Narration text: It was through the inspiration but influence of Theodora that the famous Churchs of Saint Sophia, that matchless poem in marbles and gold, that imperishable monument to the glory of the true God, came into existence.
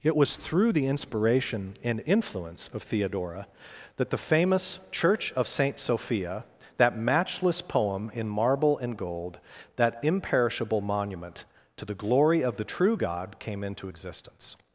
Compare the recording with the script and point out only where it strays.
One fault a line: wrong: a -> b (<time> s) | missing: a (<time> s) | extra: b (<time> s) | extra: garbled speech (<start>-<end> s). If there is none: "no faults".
wrong: but -> and (1.8 s)
wrong: Churchs -> Church (4.9 s)
wrong: marbles -> marble (8.3 s)